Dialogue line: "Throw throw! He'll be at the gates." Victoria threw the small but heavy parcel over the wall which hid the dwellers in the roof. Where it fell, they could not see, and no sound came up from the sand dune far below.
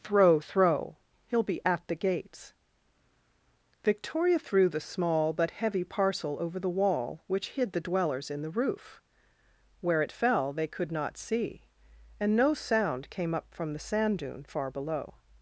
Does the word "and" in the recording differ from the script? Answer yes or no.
no